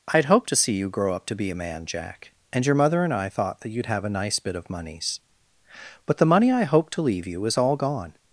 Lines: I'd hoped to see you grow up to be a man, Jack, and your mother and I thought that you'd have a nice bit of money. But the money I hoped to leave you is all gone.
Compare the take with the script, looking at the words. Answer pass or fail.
fail